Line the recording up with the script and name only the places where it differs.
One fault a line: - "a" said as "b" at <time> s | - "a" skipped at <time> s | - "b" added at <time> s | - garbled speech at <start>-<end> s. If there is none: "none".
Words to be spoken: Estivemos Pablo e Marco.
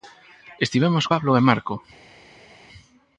none